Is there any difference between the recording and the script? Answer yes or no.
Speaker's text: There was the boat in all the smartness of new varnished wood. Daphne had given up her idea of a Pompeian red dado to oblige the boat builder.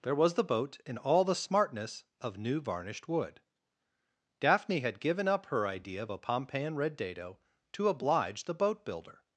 no